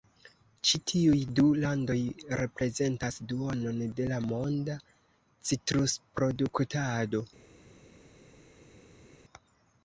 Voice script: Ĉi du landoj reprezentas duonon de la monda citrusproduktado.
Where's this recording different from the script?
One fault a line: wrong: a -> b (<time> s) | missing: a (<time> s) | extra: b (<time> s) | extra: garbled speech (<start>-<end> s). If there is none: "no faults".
extra: tiuj (0.9 s)